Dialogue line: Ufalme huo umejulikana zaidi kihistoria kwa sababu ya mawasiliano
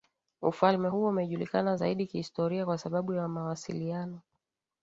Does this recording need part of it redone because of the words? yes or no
no